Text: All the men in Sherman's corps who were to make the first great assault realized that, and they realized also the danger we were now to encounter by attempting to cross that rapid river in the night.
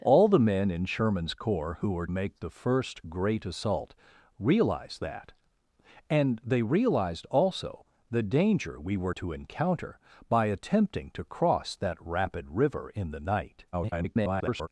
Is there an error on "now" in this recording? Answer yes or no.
yes